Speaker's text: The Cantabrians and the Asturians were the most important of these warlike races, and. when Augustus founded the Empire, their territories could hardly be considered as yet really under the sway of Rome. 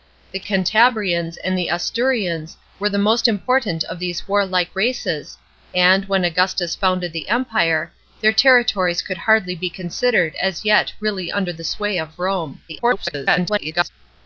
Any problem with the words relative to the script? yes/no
yes